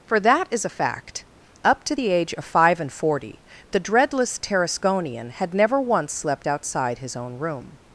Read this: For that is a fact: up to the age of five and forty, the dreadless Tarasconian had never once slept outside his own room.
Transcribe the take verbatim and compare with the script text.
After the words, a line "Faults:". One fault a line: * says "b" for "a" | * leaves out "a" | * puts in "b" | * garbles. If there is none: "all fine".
For that is a fact: up to the age of five and forty, the dreadless Tarasconian had never once slept outside his own room.
Faults:
all fine